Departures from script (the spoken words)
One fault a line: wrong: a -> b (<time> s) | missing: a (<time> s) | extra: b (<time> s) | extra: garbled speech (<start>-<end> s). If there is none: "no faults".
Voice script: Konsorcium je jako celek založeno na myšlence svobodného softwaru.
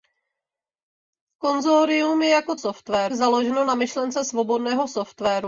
wrong: celek -> softwaru (2.5 s)